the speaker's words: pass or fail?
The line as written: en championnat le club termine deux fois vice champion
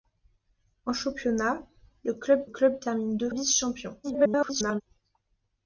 fail